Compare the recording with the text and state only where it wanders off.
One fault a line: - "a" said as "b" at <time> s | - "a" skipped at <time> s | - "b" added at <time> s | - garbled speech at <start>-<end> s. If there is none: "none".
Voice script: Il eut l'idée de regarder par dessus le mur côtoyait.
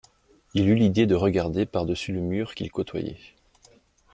- "qu'il" added at 2.5 s